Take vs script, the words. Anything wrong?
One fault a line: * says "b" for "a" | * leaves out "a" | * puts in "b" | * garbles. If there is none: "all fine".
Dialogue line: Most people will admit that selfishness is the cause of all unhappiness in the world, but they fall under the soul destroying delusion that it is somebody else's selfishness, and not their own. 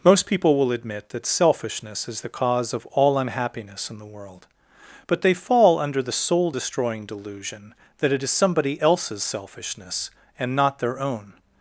all fine